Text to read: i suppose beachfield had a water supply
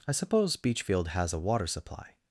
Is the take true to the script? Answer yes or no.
no